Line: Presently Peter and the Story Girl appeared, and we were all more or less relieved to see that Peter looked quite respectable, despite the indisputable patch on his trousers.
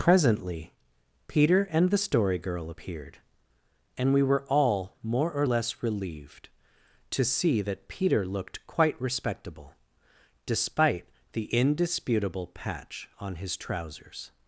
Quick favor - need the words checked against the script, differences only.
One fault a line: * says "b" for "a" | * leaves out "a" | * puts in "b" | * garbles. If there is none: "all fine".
all fine